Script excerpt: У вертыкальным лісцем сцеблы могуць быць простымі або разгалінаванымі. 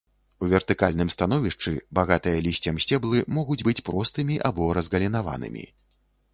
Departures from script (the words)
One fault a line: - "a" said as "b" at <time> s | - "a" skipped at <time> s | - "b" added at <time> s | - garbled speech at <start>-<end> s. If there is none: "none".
- "становішчы багатыя" added at 1.1 s